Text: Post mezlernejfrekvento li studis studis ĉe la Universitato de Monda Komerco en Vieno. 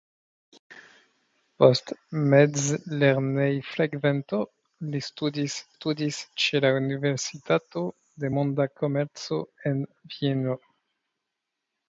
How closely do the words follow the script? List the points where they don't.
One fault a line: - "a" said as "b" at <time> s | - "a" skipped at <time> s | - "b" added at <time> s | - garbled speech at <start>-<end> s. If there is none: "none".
none